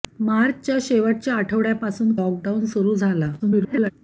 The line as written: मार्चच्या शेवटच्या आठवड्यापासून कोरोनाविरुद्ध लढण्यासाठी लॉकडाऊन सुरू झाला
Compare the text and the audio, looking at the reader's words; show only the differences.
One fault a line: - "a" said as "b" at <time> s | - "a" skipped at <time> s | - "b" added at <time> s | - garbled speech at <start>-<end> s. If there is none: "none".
- "कोरोनाविरुद्ध लढण्यासाठी" skipped at 2.1 s
- garbled speech at 3.4-3.9 s